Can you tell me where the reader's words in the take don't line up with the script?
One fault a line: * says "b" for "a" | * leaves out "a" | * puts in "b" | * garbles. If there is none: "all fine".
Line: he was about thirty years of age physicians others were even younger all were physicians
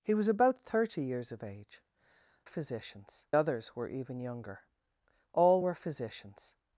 all fine